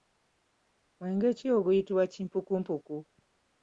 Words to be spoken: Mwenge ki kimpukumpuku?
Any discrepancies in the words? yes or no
yes